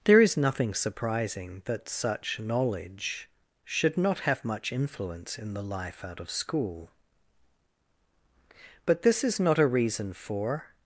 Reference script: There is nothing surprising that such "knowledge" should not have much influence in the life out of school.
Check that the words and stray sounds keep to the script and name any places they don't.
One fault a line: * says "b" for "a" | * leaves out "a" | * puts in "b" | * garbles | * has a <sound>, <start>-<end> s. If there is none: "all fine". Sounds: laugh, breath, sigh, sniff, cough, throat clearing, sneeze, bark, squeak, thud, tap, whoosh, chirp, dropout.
* puts in "But this is not a reason for"